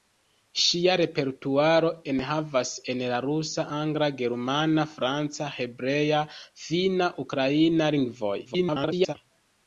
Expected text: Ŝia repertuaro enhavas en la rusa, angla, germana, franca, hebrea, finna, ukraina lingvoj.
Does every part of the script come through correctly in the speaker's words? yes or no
no